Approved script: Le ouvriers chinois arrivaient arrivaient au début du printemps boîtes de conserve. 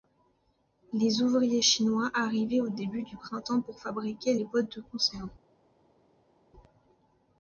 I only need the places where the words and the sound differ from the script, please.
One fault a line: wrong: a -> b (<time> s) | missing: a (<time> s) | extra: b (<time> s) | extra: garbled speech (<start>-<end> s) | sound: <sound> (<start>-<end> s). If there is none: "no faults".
wrong: Le -> Les (0.9 s)
missing: arrivaient (2.6 s)
extra: pour fabriquer les (3.6 s)